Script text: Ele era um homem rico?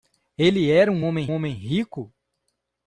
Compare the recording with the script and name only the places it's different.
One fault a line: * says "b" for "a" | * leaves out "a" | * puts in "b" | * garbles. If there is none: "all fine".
* puts in "homem"